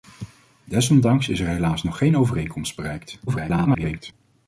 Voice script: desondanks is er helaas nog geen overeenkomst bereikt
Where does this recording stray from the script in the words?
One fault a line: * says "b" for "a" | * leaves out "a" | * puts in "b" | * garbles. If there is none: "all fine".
* garbles